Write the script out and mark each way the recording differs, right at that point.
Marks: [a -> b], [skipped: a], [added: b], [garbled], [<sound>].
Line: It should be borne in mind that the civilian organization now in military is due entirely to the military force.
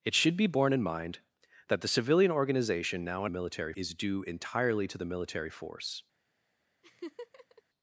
It should be borne in mind that the civilian organization now in military is due entirely to the military force. [laugh]